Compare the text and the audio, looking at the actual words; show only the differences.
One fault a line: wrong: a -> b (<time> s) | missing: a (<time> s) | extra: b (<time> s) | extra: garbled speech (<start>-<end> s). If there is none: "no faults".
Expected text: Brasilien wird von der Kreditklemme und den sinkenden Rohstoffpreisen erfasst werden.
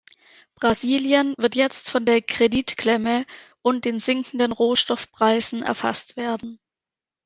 extra: jetzt (1.6 s)